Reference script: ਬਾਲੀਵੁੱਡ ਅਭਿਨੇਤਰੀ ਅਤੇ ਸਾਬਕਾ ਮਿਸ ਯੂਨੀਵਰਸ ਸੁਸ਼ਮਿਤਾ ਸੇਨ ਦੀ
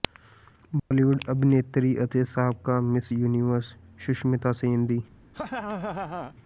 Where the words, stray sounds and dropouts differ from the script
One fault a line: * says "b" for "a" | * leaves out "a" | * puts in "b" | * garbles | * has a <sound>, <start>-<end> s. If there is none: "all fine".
* has a dropout, 0.8-0.9 s
* has a laugh, 5.3-6.3 s